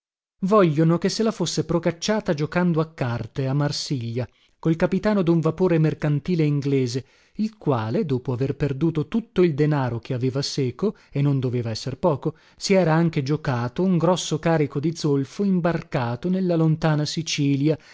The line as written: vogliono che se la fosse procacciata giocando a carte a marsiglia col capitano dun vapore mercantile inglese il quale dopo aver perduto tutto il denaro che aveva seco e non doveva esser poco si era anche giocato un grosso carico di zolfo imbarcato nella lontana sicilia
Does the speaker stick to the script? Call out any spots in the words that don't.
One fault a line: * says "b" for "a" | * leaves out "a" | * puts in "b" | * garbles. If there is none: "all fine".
all fine